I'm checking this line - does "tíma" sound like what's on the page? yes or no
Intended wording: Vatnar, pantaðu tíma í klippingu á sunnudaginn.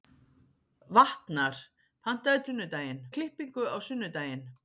no